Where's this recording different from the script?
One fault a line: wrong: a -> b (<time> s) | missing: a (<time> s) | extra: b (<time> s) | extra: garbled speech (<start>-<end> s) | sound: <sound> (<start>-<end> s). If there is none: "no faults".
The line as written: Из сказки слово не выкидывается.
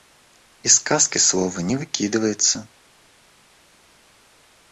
no faults